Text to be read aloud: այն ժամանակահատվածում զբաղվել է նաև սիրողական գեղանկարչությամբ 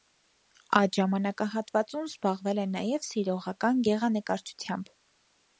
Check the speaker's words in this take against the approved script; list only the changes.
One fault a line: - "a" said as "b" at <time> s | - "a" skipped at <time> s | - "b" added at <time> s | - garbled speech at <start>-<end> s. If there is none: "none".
- "այն" said as "այդ" at 0.8 s